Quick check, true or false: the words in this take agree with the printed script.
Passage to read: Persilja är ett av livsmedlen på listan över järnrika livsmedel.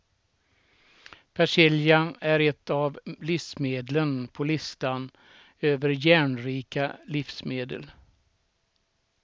true